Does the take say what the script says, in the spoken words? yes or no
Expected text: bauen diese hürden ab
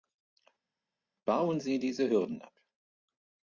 no